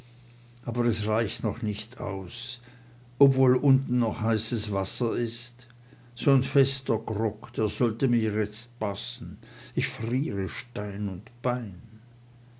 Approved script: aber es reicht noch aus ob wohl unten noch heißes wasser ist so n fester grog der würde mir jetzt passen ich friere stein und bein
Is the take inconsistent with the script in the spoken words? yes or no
yes